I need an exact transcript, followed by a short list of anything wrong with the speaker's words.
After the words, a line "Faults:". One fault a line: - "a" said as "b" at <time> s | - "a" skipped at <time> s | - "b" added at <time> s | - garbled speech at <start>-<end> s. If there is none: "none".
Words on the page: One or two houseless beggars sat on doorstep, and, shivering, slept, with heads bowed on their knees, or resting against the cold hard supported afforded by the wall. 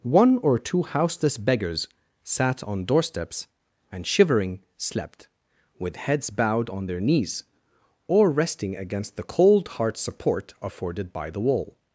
One or two houseless beggars sat on doorsteps, and, shivering, slept, with heads bowed on their knees, or resting against the cold hard support afforded by the wall.
Faults:
- "doorstep" said as "doorsteps" at 2.9 s
- "supported" said as "support" at 10.0 s